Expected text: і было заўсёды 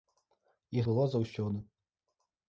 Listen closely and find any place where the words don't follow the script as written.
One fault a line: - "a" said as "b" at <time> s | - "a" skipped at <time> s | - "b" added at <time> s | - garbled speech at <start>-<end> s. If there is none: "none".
none